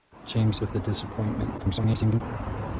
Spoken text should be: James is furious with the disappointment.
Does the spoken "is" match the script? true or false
false